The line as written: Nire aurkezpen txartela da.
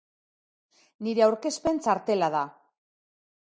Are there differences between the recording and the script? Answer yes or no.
no